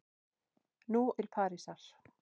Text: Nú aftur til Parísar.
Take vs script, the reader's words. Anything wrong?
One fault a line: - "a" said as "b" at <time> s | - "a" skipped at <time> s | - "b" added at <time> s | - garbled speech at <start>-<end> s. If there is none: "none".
- "aftur" skipped at 1.0 s